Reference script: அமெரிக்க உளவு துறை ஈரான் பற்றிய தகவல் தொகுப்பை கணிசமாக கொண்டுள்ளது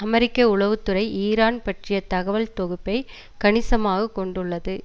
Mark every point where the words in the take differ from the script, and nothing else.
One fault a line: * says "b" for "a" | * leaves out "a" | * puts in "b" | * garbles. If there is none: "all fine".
all fine